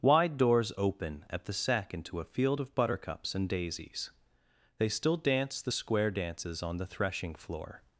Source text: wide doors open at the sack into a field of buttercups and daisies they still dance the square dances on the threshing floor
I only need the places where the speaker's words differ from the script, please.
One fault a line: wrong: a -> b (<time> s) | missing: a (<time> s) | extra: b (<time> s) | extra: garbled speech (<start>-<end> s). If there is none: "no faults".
no faults